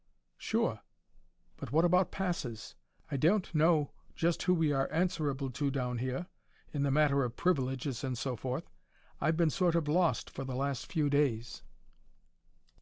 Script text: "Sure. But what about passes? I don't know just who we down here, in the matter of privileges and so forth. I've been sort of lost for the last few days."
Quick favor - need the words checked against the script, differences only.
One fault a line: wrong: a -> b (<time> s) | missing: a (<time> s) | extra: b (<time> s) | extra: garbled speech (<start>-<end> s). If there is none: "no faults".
extra: are answerable to (4.7 s)